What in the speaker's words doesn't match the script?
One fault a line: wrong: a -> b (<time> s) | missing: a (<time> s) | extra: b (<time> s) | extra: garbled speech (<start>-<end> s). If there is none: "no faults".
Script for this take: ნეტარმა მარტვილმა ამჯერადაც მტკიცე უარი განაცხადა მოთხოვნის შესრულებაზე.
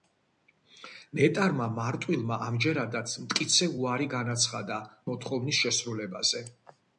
no faults